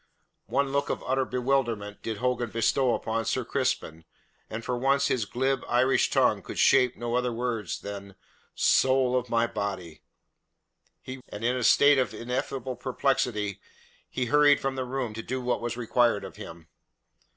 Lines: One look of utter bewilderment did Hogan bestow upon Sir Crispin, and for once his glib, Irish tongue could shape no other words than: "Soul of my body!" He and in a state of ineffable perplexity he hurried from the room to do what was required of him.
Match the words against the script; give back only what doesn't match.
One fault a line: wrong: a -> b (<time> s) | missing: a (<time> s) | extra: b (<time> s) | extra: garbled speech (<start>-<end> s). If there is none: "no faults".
no faults